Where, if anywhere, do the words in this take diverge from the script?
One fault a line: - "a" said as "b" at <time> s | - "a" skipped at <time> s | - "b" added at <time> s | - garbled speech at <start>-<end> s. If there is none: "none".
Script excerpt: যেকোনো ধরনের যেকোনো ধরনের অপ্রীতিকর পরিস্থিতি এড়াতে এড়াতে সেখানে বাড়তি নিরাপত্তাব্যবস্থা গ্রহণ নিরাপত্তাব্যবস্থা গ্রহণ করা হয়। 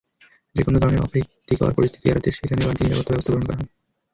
- "যেকোনো ধরনের" skipped at 1.0 s
- "এড়াতে" skipped at 2.3 s
- "নিরাপত্তাব্যবস্থা গ্রহণ" skipped at 3.4 s